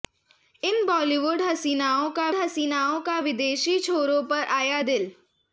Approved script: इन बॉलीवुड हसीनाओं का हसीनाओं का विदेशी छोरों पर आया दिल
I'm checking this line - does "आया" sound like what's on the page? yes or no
yes